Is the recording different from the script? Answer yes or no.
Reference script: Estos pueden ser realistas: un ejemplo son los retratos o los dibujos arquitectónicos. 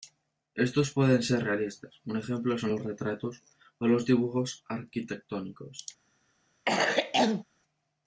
no